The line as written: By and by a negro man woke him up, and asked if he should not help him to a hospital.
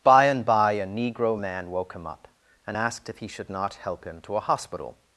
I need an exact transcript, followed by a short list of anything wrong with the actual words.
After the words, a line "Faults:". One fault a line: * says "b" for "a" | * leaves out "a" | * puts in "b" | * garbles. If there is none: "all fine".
By and by a negro man woke him up, and asked if he should not help him to a hospital.
Faults:
all fine